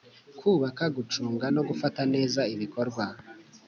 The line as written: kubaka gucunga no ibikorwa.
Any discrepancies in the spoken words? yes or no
yes